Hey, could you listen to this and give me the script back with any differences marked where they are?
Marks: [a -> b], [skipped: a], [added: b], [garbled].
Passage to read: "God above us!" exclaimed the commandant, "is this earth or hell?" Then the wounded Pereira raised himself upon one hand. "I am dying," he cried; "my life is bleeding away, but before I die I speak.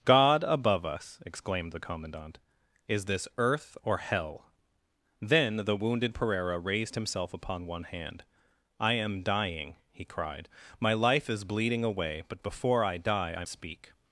"God above us!" exclaimed the commandant, "is this earth or hell?" Then the wounded Pereira raised himself upon one hand. "I am dying," he cried; "my life is bleeding away, but before I die I speak.